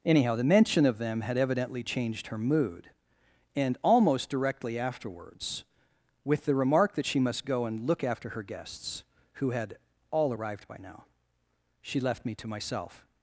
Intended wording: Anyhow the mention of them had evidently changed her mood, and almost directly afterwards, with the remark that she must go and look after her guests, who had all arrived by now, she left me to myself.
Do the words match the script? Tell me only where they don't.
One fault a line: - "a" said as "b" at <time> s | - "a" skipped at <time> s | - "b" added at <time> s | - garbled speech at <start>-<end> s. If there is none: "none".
none